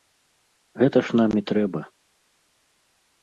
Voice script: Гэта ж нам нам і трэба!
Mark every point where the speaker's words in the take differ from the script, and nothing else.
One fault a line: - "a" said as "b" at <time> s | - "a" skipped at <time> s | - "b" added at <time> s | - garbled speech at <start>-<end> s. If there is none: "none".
- "нам" skipped at 1.3 s